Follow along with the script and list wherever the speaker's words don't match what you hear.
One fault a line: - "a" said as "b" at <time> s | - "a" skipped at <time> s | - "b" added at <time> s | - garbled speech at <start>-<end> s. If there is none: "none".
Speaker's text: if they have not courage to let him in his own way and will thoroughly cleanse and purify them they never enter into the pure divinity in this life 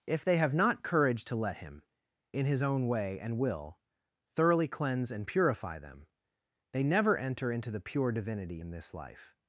none